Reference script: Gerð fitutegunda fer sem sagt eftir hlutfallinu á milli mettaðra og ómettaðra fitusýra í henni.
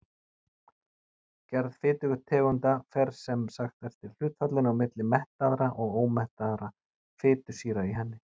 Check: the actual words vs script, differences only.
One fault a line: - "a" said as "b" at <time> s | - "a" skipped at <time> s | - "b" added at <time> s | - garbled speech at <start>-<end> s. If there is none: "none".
none